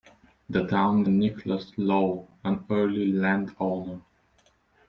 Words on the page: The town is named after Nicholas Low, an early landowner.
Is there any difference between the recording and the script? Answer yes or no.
yes